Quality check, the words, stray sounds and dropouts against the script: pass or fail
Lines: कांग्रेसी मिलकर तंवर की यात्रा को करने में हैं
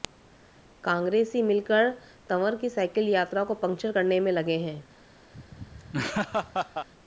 fail